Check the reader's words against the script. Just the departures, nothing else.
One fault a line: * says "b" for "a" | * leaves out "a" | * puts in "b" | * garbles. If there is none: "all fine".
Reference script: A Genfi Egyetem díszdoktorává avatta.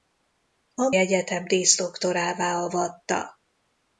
* leaves out "Genfi"